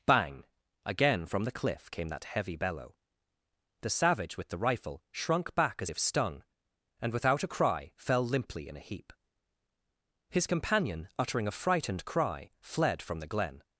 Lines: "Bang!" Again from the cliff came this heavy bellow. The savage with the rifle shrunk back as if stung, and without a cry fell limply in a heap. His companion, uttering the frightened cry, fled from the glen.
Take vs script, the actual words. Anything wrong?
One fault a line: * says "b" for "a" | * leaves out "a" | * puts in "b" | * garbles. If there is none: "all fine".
* says "that" for "this"
* says "a" for "the"